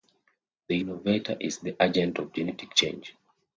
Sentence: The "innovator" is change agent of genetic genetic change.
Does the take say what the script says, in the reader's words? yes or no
no